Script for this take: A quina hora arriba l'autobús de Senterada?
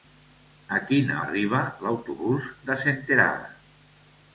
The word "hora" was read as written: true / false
false